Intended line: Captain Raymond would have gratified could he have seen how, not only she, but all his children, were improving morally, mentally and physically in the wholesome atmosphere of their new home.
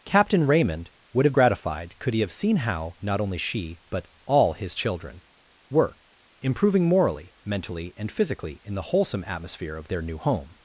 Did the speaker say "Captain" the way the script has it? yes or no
yes